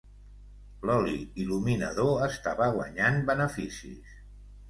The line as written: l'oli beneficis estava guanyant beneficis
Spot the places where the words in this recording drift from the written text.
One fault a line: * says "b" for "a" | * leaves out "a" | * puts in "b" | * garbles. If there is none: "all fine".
* says "il·luminador" for "beneficis"